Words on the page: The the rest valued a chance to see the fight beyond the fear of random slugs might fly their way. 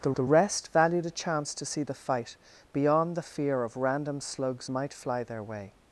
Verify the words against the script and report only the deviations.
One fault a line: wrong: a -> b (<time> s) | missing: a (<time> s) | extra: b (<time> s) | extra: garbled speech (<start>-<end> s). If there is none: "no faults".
no faults